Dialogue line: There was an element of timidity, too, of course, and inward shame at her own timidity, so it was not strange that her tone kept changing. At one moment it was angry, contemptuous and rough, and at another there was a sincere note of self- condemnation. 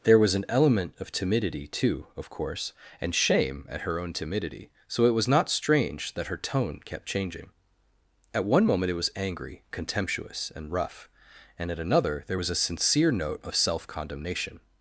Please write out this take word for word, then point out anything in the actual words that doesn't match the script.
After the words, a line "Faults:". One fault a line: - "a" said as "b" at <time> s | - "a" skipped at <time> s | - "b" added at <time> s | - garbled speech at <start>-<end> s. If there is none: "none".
There was an element of timidity, too, of course, and shame at her own timidity, so it was not strange that her tone kept changing. At one moment it was angry, contemptuous and rough, and at another there was a sincere note of self- condemnation.
Faults:
- "inward" skipped at 3.1 s